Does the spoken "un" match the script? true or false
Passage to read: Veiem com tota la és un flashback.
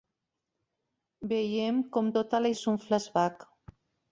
true